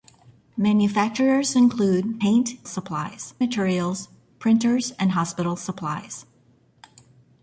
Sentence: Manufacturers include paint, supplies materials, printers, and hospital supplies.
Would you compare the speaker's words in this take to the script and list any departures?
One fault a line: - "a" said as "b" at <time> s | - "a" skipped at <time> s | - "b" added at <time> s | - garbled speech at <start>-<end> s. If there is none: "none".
none